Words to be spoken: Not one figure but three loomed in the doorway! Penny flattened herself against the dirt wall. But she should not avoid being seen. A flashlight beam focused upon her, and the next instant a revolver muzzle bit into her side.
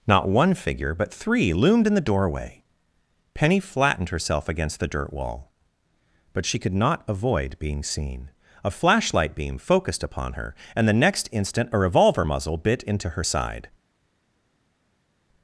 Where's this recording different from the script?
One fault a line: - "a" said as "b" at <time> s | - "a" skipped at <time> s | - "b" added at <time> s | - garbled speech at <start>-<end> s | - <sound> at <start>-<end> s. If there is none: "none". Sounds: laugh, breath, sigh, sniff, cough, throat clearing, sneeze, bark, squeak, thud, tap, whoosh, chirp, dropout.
- "should" said as "could" at 6.6 s